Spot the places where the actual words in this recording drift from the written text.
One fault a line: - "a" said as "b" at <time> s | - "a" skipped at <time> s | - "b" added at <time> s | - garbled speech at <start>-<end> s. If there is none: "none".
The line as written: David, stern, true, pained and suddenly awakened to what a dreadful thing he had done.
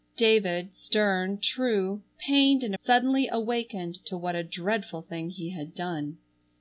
none